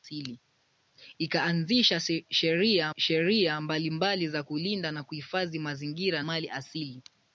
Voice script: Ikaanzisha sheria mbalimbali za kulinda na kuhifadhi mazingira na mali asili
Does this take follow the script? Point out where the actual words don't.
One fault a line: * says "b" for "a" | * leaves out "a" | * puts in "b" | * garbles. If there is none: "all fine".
* puts in "sheria"
* leaves out "na"